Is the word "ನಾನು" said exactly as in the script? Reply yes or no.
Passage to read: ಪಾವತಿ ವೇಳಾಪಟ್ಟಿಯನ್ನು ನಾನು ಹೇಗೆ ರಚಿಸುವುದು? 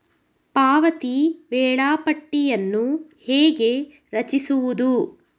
no